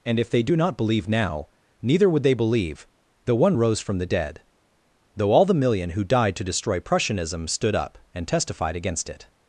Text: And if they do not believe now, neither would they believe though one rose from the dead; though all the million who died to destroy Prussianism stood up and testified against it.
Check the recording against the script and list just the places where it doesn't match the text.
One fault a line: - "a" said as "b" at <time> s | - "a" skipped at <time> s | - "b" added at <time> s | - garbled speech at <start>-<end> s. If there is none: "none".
none